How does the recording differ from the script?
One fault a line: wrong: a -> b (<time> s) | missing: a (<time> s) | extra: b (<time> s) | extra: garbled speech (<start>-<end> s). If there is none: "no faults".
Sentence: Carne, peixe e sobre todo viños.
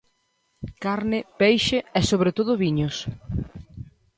no faults